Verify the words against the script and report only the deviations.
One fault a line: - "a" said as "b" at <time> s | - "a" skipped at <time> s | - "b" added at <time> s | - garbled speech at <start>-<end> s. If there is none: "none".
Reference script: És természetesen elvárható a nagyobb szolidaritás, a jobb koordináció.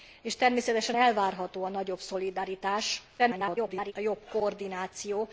- garbled speech at 3.2-3.9 s